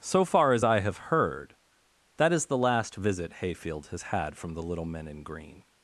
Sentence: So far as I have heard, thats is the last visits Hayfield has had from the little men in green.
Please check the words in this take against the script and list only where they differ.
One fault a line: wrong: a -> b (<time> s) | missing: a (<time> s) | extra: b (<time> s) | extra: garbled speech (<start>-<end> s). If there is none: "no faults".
wrong: thats -> that (2.2 s)
wrong: visits -> visit (3.0 s)